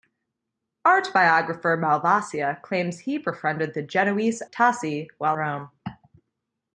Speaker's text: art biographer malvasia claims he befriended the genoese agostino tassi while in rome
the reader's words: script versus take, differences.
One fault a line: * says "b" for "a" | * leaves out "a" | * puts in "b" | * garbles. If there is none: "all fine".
* leaves out "agostino"
* leaves out "in"